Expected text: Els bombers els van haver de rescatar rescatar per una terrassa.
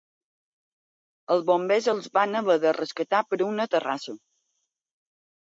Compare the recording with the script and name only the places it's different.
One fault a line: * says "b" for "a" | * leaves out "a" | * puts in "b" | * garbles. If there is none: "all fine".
* leaves out "rescatar"